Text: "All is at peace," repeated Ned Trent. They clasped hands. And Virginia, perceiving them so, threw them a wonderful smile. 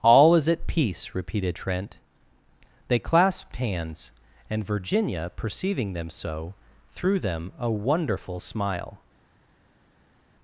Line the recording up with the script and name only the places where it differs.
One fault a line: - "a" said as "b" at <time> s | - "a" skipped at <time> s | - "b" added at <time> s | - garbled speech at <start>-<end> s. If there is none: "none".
- "Ned" skipped at 1.6 s